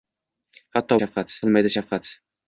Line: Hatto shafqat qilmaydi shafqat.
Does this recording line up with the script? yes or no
yes